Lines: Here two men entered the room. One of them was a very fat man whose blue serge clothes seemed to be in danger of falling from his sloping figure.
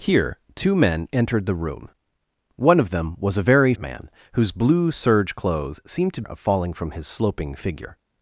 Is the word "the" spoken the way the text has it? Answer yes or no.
yes